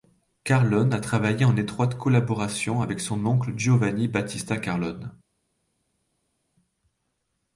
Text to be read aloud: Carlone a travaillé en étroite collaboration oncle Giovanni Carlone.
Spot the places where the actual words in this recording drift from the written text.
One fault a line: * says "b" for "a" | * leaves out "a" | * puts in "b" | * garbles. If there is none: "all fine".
* puts in "avec son"
* puts in "Battista"